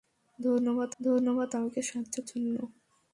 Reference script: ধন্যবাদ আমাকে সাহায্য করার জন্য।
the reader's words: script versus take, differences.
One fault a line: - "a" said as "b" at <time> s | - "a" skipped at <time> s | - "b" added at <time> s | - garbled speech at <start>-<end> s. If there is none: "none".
- "ধন্যবাদ" added at 1.0 s
- "করার" skipped at 2.2 s